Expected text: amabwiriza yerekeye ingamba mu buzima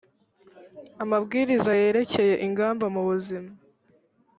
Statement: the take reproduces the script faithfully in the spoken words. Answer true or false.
true